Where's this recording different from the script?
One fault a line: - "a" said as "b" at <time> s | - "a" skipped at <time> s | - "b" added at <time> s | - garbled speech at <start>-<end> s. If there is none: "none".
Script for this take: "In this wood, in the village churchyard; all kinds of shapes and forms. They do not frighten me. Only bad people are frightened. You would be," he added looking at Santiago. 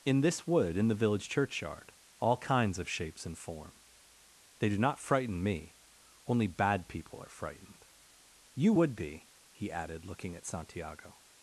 - "forms" said as "form" at 3.4 s